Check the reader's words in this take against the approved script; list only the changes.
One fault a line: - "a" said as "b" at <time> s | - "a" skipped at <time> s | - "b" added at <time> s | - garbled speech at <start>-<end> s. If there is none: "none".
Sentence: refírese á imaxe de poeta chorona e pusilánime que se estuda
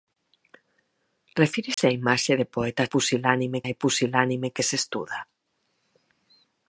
- "chorona" said as "pusilánime" at 2.9 s